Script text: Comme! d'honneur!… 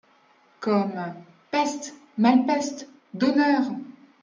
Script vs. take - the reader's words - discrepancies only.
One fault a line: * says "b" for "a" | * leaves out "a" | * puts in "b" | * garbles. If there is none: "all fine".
* puts in "peste malpeste"